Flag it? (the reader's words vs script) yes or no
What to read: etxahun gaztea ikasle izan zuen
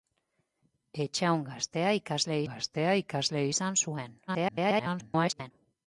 yes